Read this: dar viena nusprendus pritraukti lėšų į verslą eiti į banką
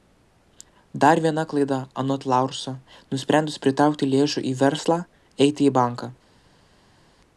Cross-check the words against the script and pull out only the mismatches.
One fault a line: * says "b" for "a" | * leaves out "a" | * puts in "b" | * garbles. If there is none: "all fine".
* puts in "klaida anot laurso"